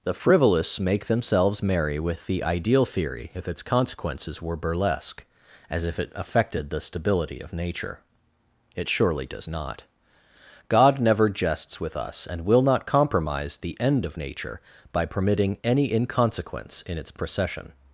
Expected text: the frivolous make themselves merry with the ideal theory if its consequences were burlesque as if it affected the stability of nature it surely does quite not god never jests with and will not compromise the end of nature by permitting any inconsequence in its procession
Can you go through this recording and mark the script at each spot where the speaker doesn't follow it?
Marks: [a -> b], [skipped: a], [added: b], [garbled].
the frivolous make themselves merry with the ideal theory if its consequences were burlesque as if it affected the stability of nature it surely does [skipped: quite] not god never jests with [added: us] and will not compromise the end of nature by permitting any inconsequence in its procession